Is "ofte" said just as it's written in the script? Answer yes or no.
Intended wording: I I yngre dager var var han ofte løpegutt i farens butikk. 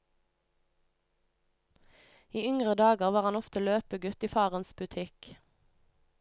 yes